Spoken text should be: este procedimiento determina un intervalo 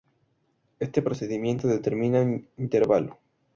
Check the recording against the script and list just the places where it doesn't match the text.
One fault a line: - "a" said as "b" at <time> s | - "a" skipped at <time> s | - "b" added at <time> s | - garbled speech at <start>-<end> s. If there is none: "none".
none